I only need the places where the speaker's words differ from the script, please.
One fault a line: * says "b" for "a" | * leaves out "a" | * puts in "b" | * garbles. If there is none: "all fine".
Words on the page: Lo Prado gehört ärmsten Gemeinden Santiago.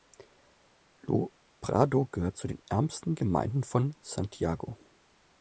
* puts in "zu den"
* puts in "von"